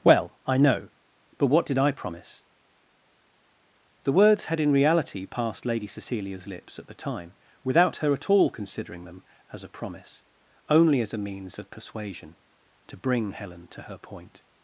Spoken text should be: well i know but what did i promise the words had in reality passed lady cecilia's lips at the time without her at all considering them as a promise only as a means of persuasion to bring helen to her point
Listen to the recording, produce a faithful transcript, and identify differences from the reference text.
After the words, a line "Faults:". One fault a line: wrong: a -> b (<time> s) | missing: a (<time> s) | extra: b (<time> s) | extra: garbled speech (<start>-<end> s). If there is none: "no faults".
well i know but what did i promise the words had in reality passed lady cecilia's lips at the time without her at all considering them as a promise only as a means of persuasion to bring helen to her point
Faults:
no faults